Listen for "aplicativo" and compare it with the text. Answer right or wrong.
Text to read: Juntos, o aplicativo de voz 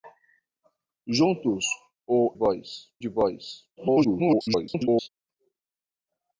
wrong